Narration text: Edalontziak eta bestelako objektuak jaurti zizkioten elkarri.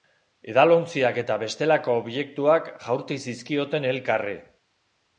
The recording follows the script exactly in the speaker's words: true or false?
true